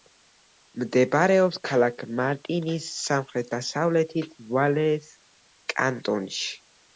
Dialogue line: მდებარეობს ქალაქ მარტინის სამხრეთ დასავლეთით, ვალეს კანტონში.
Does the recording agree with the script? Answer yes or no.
yes